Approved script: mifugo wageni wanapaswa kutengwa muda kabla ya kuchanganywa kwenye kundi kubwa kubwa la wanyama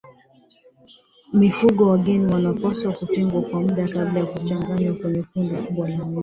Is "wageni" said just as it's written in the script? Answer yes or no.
yes